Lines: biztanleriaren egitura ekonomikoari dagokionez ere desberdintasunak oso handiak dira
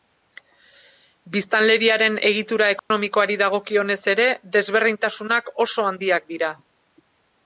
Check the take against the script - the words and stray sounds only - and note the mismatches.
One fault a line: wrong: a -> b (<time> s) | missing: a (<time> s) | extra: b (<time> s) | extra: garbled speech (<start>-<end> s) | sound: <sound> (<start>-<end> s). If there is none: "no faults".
sound: dropout (2.8-2.9 s)